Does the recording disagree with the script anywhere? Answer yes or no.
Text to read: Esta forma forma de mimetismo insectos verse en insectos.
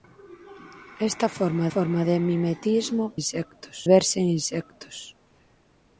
no